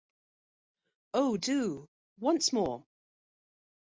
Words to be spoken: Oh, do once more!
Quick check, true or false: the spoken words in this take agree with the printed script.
true